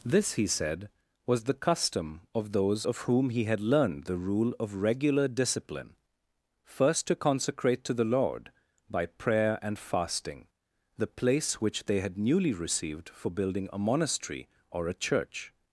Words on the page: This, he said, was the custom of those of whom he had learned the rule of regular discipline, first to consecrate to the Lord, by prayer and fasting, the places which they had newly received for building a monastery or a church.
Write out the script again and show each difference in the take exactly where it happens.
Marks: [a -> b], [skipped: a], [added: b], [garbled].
This, he said, was the custom of those of whom he had learned the rule of regular discipline, first to consecrate to the Lord, by prayer and fasting, the [places -> place] which they had newly received for building a monastery or a church.